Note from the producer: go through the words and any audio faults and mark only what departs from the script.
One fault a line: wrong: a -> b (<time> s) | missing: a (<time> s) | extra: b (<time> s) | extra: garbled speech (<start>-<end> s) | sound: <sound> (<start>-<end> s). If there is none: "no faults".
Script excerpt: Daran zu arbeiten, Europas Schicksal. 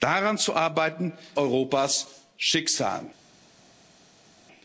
no faults